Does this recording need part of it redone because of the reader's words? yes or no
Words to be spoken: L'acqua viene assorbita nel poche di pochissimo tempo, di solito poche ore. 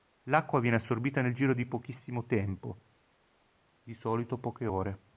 yes